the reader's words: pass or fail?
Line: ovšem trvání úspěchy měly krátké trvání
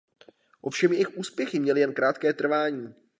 fail